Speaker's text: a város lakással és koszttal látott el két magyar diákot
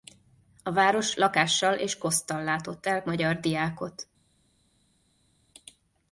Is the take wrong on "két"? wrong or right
wrong